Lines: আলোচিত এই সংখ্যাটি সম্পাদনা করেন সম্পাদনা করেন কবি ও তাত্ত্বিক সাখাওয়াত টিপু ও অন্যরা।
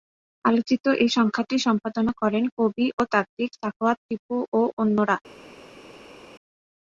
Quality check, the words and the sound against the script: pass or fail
fail